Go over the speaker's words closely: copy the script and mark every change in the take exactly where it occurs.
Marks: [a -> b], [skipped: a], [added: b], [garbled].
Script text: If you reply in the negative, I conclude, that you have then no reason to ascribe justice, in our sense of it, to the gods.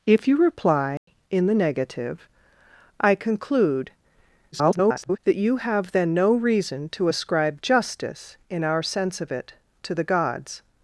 If you reply in the negative, I conclude, [garbled] that you have then no reason to ascribe justice, in our sense of it, to the gods.